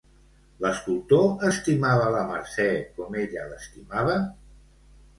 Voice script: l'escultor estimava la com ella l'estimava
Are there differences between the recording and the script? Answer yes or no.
yes